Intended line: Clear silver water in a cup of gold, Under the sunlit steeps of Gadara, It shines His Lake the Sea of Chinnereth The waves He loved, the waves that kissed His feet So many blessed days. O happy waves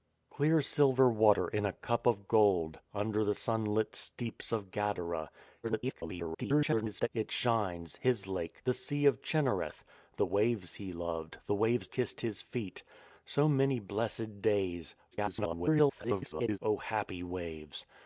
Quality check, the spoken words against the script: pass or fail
fail